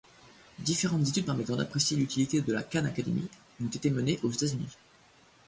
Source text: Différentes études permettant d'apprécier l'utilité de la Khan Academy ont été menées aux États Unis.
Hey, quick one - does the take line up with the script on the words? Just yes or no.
yes